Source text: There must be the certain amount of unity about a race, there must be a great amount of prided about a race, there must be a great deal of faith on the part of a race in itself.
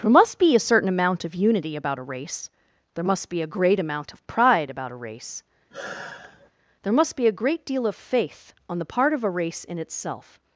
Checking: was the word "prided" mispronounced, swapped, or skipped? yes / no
yes